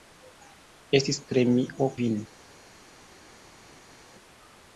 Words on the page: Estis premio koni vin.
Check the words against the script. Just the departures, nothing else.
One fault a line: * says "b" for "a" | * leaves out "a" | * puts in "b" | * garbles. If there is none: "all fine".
* leaves out "koni"